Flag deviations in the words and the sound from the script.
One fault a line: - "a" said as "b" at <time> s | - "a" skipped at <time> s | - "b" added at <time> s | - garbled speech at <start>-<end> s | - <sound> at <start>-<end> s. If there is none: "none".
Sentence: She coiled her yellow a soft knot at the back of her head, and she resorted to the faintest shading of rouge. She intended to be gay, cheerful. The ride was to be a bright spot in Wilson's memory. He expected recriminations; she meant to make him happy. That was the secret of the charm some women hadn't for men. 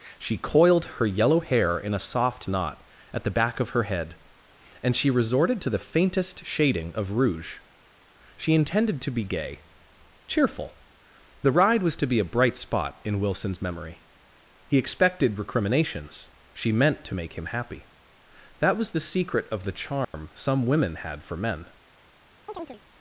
- "hair in" added at 1.4 s
- dropout at 20.0-20.1 s
- "hadn't" said as "had" at 21.0 s
- chirp at 22.5-22.8 s